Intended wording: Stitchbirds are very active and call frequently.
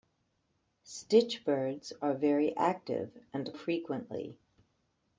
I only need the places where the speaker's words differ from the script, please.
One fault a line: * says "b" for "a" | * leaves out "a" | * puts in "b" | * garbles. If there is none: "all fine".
* leaves out "call"